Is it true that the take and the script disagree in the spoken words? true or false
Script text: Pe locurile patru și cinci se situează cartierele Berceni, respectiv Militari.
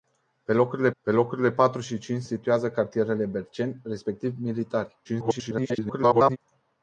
true